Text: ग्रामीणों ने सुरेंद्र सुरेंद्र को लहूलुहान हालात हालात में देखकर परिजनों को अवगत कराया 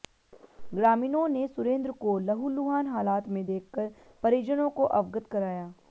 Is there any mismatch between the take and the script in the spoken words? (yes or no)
yes